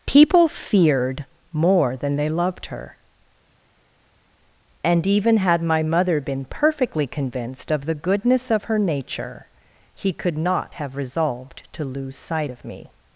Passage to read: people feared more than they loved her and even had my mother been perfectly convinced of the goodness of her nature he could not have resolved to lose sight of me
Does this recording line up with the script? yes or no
yes